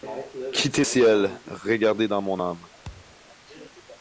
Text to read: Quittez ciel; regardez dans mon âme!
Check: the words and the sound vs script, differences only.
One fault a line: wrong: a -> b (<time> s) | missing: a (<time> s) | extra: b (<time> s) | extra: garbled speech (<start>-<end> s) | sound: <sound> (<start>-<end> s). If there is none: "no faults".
sound: thud (2.8-3.2 s)